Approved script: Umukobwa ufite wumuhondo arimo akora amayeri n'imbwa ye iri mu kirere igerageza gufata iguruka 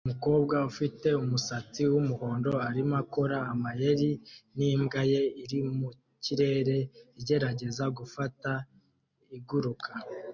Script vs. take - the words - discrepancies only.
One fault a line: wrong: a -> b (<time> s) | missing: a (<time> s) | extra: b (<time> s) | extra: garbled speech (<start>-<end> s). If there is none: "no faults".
extra: umusatsi (1.2 s)